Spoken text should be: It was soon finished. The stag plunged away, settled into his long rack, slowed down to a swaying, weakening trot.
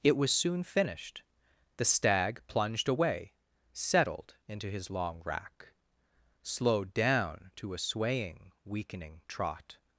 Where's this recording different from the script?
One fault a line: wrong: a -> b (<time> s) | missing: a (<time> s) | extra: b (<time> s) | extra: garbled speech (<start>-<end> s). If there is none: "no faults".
no faults